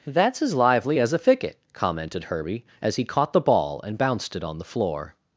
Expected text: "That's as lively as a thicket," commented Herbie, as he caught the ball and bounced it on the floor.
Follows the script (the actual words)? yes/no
yes